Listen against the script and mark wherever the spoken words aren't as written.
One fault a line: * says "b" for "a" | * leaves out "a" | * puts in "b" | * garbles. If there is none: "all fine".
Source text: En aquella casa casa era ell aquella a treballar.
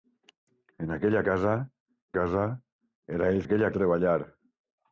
all fine